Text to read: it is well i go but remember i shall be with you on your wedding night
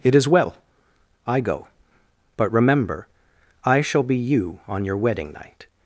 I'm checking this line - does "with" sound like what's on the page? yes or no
no